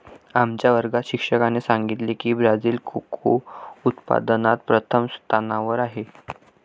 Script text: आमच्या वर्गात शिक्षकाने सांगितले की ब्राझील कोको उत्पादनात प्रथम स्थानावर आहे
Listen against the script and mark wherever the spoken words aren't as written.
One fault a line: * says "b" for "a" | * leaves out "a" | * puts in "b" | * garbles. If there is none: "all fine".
all fine